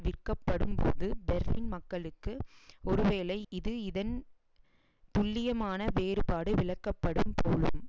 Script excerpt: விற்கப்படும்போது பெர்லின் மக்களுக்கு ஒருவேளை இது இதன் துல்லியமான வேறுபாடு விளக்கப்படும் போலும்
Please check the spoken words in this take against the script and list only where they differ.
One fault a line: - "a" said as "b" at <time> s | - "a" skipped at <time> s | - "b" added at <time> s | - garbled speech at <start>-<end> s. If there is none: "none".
none